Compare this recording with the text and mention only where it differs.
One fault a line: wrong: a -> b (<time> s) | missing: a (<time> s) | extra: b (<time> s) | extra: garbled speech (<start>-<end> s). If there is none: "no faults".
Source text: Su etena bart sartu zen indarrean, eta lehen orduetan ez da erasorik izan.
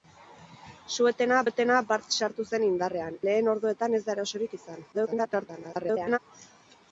extra: etena (1.5 s)
missing: eta (3.2 s)
extra: garbled speech (4.9-6.2 s)